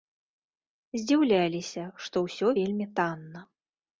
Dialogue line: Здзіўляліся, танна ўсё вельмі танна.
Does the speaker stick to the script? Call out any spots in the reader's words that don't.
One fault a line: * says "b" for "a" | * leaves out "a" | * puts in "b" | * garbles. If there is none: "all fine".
* says "што" for "танна"